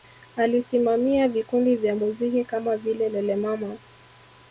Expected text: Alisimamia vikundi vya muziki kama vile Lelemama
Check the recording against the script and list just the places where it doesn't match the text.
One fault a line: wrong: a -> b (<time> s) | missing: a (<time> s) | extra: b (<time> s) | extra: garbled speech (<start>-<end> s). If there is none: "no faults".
no faults